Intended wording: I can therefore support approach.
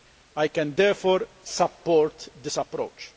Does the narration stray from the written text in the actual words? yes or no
yes